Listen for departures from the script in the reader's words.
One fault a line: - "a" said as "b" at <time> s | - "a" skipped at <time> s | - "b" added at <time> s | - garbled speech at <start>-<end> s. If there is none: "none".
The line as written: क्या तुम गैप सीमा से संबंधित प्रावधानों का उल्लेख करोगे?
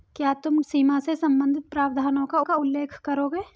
- "गैप" skipped at 0.6 s
- "का" added at 2.4 s